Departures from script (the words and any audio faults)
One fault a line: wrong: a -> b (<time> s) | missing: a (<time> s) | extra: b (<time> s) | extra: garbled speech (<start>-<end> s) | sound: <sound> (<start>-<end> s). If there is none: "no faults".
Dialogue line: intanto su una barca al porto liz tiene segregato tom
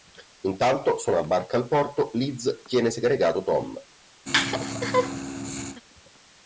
sound: laugh (4.3-5.8 s)